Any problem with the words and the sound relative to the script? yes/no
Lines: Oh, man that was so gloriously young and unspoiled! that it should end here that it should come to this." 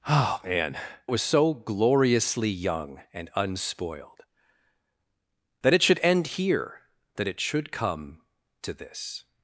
yes